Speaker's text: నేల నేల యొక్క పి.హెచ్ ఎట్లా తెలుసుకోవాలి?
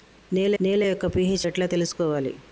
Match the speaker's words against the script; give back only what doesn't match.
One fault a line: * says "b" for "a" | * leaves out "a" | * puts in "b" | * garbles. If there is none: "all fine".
all fine